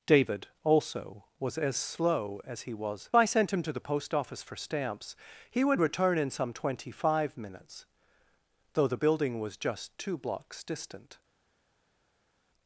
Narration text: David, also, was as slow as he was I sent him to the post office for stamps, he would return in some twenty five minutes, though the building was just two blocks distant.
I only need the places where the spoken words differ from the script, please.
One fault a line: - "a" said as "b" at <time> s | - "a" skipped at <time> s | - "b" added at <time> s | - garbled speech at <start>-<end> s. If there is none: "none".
none